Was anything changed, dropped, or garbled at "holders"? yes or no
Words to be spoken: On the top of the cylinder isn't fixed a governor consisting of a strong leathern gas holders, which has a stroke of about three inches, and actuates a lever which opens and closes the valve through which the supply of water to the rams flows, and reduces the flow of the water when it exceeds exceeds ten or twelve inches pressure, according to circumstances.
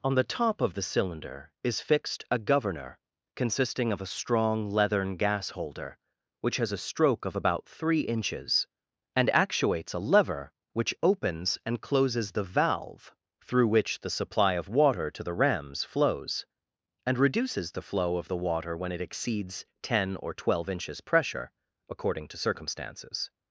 yes